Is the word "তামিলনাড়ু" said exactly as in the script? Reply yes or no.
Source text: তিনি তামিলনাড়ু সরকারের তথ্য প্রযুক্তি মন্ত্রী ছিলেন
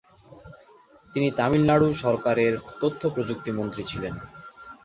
yes